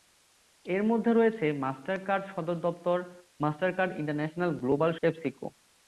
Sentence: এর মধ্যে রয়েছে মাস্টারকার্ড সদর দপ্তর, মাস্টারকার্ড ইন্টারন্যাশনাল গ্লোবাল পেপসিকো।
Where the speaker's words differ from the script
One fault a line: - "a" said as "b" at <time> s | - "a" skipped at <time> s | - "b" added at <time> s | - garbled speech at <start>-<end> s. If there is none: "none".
none